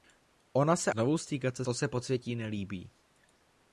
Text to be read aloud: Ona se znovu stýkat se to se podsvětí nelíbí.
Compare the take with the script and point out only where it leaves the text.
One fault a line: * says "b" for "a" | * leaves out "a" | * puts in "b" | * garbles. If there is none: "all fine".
all fine